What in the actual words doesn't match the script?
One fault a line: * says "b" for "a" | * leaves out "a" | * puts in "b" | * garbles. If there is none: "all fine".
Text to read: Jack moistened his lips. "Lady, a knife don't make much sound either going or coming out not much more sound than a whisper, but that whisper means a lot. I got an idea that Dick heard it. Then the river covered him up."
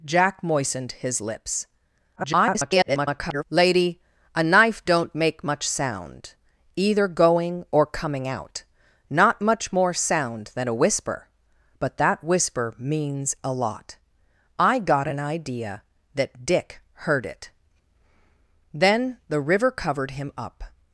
* garbles